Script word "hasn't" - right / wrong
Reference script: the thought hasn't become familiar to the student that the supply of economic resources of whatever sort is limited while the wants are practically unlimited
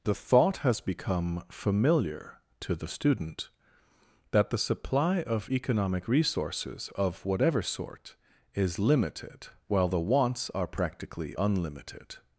wrong